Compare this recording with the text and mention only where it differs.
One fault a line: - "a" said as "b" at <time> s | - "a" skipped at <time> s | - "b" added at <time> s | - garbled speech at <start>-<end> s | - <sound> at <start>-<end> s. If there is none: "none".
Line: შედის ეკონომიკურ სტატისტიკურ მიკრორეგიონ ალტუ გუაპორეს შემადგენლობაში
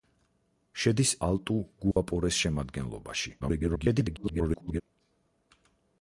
- "ეკონომიკურ სტატისტიკურ მიკრორეგიონ" skipped at 1.1 s
- dropout at 1.9-2.0 s
- garbled speech at 3.4-4.8 s